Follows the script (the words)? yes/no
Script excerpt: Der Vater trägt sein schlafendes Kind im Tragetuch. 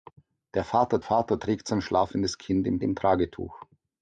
no